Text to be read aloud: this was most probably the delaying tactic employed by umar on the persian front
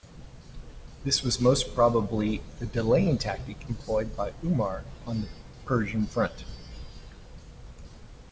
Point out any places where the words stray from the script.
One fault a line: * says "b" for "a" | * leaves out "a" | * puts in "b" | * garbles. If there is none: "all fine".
all fine